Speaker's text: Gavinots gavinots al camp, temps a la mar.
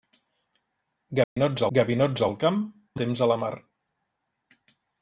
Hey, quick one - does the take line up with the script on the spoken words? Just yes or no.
yes